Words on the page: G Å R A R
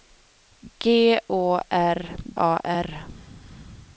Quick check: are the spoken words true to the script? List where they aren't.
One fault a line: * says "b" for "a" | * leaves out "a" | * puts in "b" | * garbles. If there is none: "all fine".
all fine